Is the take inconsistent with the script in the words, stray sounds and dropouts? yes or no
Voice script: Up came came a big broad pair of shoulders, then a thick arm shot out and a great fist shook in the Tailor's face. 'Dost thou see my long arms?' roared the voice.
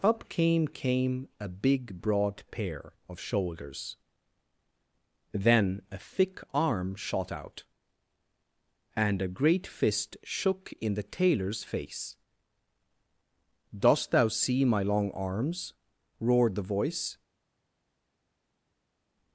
no